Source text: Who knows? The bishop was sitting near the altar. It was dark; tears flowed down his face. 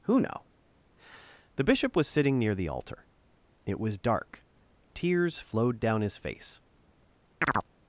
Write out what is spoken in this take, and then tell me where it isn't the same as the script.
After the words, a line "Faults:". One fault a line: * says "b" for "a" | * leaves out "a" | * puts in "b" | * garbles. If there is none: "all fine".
Who know? The bishop was sitting near the altar. It was dark; tears flowed down his face.
Faults:
* says "know" for "knows"